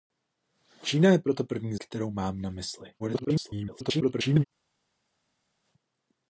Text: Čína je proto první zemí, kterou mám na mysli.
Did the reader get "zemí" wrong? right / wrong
wrong